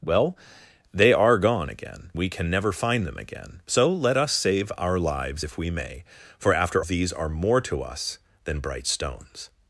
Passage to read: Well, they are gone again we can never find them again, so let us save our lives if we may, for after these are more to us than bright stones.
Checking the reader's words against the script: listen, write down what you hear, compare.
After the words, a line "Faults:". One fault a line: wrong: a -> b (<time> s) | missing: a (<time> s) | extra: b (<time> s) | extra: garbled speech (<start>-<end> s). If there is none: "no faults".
Well, they are gone again we can never find them again, so let us save our lives if we may, for after these are more to us than bright stones.
Faults:
no faults